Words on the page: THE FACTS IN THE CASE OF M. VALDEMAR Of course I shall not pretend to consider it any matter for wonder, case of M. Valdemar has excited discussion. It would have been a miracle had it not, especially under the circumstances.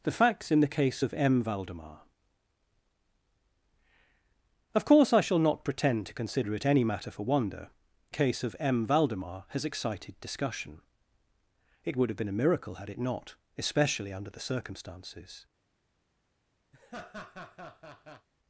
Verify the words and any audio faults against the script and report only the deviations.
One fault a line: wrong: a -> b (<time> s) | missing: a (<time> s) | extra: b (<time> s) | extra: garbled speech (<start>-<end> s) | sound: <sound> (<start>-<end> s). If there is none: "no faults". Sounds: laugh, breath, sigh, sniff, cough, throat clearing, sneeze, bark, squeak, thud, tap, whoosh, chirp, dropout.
sound: laugh (16.7-18.3 s)